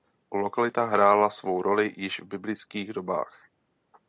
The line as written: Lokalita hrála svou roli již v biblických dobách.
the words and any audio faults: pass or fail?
pass